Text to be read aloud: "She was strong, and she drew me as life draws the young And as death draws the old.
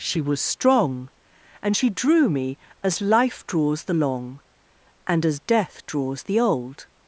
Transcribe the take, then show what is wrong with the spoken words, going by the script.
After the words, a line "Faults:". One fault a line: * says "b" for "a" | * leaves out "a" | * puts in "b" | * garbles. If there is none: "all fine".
"She was strong, and she drew me as life draws the long And as death draws the old.
Faults:
* says "long" for "young"